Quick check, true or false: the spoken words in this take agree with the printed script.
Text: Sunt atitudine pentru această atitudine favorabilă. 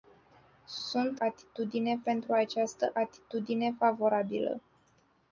true